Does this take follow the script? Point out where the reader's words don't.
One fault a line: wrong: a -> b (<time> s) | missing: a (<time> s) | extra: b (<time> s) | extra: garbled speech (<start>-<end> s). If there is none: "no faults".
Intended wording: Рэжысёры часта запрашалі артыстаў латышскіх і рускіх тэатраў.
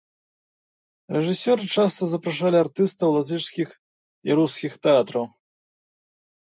no faults